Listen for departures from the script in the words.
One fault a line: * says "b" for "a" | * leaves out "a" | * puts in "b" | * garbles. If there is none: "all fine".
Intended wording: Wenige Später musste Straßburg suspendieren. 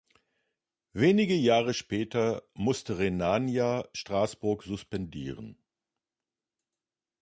* puts in "Jahre"
* puts in "Rhenania"